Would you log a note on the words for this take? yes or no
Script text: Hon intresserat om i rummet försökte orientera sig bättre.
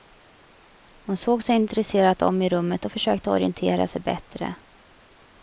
yes